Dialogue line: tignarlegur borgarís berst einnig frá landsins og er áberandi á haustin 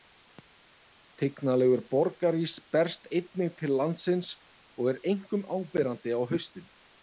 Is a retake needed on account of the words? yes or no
yes